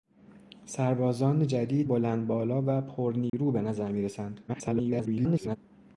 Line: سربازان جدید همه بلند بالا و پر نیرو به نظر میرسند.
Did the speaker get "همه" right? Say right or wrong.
wrong